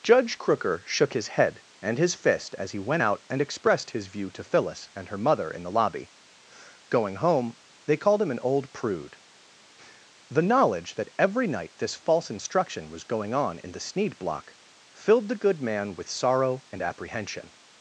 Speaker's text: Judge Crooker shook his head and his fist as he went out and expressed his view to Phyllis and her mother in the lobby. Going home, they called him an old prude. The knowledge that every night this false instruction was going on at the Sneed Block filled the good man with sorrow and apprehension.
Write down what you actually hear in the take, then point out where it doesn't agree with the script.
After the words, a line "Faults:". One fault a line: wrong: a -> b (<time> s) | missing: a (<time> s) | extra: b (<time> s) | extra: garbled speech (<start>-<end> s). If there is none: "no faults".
Judge Crooker shook his head and his fist as he went out and expressed his view to Phyllis and her mother in the lobby. Going home, they called him an old prude. The knowledge that every night this false instruction was going on in the Sneed Block filled the good man with sorrow and apprehension.
Faults:
wrong: at -> in (13.6 s)